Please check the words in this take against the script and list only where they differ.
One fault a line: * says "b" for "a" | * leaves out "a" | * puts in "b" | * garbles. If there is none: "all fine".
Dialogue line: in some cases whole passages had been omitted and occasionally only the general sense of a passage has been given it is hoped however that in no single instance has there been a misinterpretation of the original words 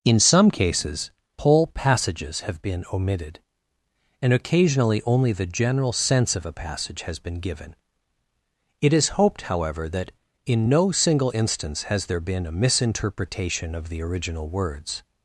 * says "have" for "had"